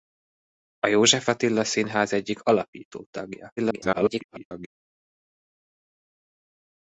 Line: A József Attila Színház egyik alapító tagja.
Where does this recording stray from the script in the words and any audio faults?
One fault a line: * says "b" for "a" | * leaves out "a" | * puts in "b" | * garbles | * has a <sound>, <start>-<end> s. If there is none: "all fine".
* garbles